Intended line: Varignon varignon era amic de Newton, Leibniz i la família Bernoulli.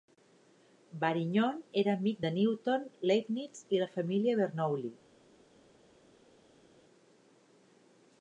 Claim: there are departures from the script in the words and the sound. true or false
true